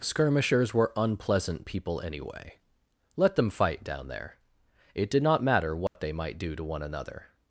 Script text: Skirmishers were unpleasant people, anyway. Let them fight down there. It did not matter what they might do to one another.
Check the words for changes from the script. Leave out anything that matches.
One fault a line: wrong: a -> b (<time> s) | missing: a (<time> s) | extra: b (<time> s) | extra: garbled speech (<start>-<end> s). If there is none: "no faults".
no faults